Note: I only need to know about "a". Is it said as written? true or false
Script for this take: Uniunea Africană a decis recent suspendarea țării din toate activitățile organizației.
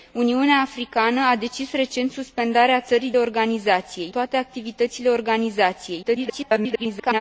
true